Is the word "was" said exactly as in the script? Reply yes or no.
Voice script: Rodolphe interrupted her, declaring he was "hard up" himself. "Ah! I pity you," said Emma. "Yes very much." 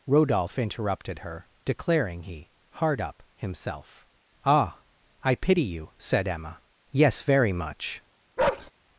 no